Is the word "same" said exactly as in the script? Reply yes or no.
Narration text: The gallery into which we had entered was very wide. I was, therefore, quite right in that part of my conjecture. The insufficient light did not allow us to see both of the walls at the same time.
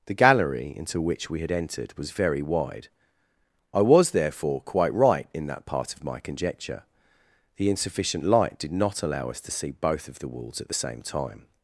yes